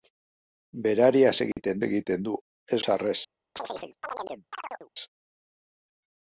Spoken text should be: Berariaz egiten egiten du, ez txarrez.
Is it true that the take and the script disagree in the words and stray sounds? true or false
true